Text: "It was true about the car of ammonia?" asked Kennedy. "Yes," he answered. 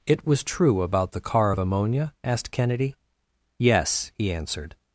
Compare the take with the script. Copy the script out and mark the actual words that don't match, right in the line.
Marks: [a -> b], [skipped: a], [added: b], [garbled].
"It was true about the car of ammonia?" asked Kennedy. "Yes," he answered.